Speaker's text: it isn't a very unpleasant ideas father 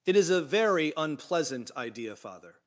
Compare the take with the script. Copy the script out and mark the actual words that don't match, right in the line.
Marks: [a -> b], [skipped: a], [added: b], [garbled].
it [isn't -> is] a very unpleasant [ideas -> idea] father